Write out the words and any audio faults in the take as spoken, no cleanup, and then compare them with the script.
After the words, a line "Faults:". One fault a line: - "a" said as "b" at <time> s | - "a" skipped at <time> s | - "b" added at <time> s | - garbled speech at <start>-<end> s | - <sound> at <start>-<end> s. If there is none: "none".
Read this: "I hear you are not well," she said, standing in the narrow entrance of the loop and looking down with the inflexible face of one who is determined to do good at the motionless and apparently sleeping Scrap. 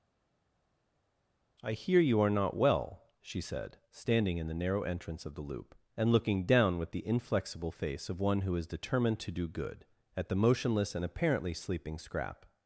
"I hear you are not well," she said, standing in the narrow entrance of the loop and looking down with the inflexible face of one who is determined to do good at the motionless and apparently sleeping Scrap.
Faults:
none